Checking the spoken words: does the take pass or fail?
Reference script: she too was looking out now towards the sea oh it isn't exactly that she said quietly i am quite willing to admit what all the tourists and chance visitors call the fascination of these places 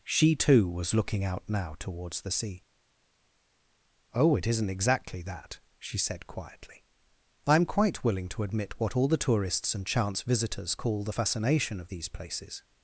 pass